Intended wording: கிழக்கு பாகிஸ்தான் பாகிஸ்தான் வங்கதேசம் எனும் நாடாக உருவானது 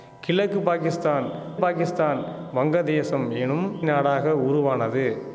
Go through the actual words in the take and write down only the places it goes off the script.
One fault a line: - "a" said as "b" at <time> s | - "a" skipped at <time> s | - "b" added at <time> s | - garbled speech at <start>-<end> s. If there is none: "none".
none